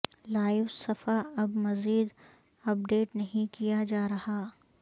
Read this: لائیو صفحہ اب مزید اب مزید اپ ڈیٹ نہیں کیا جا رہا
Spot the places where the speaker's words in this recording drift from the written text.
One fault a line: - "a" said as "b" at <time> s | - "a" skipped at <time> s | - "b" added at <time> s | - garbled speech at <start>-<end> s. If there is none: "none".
- "اب مزید" skipped at 2.1 s